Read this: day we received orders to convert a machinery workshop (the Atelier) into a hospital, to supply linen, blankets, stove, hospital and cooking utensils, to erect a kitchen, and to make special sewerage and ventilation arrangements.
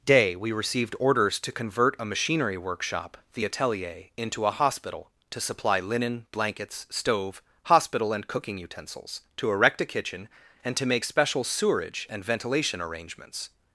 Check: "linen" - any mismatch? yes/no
no